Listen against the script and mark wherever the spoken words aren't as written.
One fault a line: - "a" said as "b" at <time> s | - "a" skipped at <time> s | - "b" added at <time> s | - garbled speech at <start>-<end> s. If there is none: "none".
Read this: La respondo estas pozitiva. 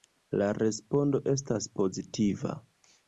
none